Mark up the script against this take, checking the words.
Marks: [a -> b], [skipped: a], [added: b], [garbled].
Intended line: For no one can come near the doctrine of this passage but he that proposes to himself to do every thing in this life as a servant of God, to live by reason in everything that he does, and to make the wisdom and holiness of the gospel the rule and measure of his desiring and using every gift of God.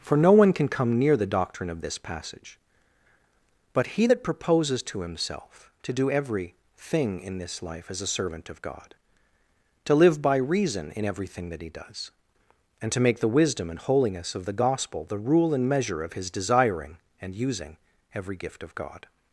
For no one can come near the doctrine of this passage but he that proposes to himself to do every thing in this life as a servant of God, to live by reason in everything that he does, and to make the wisdom and holiness of the gospel the rule and measure of his desiring and using every gift of God.